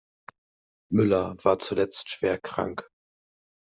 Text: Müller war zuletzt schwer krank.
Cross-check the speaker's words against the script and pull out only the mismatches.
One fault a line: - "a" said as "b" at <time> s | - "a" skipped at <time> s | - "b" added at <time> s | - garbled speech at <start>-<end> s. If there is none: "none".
none